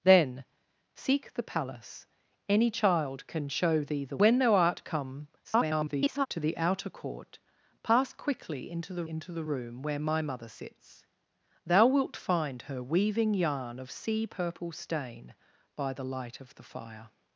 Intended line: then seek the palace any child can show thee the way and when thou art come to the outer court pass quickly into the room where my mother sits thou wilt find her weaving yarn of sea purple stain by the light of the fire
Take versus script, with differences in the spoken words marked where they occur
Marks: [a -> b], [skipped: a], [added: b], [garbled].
then seek the palace any child can show thee the [skipped: way and] when thou art come [garbled] to the outer court pass quickly into the [added: into the] room where my mother sits thou wilt find her weaving yarn of sea purple stain by the light of the fire